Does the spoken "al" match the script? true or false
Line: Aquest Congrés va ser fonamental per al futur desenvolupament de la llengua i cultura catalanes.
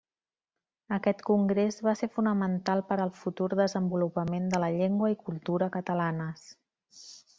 true